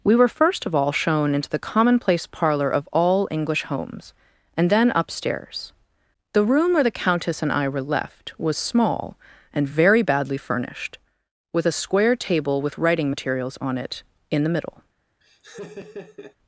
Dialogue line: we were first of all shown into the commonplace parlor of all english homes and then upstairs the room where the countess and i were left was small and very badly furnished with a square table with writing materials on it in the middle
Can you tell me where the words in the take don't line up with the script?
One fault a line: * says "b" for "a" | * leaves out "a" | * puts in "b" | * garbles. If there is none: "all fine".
all fine